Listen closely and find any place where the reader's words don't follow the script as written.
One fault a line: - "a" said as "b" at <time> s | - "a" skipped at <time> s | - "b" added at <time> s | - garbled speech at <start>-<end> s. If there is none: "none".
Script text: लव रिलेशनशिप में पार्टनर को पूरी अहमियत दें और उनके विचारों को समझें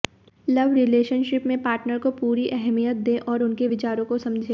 none